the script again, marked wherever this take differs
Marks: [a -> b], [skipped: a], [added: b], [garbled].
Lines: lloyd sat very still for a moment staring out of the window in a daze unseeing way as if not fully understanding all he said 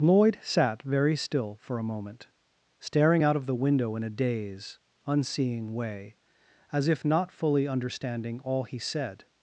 lloyd sat very still for a moment staring out of the window in a daze unseeing way as if not fully understanding all he said